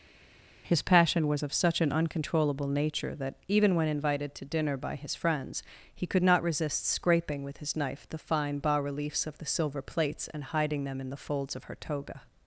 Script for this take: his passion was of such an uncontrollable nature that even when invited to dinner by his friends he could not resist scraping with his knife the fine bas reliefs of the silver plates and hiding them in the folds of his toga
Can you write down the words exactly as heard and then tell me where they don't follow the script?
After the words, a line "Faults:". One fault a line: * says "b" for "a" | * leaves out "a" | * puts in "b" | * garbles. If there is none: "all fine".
his passion was of such an uncontrollable nature that even when invited to dinner by his friends he could not resist scraping with his knife the fine bas reliefs of the silver plates and hiding them in the folds of her toga
Faults:
* says "her" for "his"